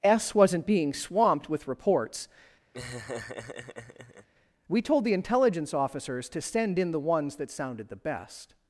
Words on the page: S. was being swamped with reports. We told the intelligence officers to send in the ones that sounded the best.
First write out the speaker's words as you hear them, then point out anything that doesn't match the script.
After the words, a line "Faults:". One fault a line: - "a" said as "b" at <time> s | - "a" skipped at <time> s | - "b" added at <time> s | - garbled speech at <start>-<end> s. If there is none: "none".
S. wasn't being swamped with reports. We told the intelligence officers to send in the ones that sounded the best.
Faults:
- "was" said as "wasn't" at 0.3 s